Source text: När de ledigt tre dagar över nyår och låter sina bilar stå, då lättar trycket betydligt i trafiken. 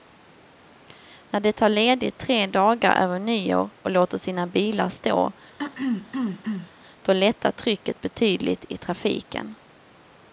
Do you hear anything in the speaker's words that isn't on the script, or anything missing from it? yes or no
yes